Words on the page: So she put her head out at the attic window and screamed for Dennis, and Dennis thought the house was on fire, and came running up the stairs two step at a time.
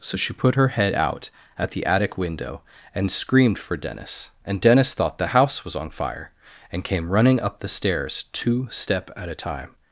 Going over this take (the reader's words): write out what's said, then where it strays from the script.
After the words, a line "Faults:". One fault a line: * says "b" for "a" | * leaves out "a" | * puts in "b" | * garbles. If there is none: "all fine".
So she put her head out at the attic window and screamed for Dennis, and Dennis thought the house was on fire, and came running up the stairs two step at a time.
Faults:
all fine